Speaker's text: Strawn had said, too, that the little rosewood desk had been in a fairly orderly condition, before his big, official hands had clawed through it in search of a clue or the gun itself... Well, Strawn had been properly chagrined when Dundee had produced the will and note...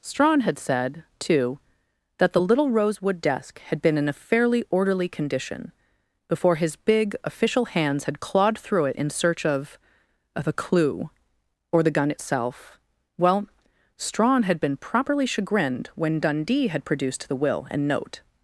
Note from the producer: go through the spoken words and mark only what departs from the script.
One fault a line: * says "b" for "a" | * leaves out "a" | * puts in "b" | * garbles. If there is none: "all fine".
* puts in "of"